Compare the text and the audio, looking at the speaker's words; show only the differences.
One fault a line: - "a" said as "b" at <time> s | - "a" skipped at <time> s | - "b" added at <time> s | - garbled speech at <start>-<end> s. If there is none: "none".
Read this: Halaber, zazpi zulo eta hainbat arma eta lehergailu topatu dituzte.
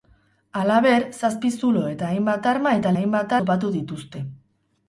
- "lehergailu" said as "hainbat" at 3.0 s